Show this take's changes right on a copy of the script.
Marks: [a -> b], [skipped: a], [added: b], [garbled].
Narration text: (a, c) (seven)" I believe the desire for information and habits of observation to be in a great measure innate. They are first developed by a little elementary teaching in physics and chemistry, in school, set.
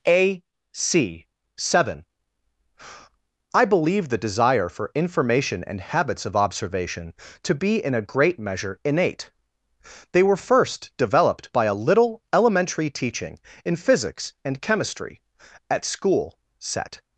(a, c) (seven)" I believe the desire for information and habits of observation to be in a great measure innate. They [are -> were] first developed by a little elementary teaching in physics and chemistry, [in -> at] school, set.